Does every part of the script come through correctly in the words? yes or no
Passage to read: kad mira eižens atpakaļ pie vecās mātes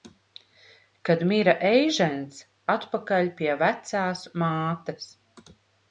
yes